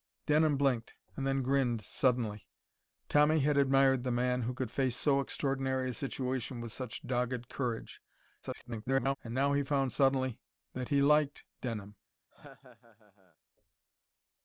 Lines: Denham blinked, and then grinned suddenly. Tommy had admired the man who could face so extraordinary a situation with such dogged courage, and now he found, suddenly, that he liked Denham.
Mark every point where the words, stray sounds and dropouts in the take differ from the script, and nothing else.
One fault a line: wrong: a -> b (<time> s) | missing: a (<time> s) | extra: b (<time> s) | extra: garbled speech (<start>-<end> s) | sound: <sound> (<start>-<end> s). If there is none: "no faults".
extra: garbled speech (8.4-9.2 s)
sound: laugh (12.3-13.4 s)